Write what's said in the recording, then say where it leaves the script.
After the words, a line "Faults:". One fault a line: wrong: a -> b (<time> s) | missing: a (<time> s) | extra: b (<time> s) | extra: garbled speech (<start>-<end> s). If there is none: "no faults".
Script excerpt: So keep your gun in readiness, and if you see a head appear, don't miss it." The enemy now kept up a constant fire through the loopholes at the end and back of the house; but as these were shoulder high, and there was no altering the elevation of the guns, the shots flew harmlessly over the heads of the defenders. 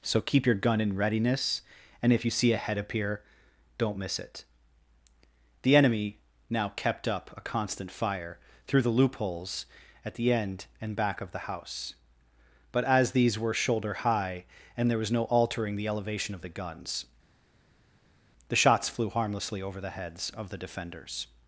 So keep your gun in readiness, and if you see a head appear, don't miss it." The enemy now kept up a constant fire through the loopholes at the end and back of the house; but as these were shoulder high, and there was no altering the elevation of the guns, the shots flew harmlessly over the heads of the defenders.
Faults:
no faults